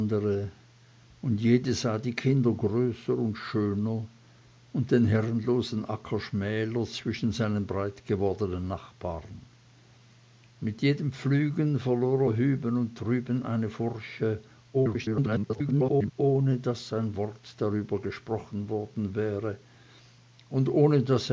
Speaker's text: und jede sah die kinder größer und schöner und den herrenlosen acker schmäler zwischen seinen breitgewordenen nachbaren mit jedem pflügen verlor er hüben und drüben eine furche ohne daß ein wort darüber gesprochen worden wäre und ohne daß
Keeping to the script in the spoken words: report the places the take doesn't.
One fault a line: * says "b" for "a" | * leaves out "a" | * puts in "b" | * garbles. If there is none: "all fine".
* garbles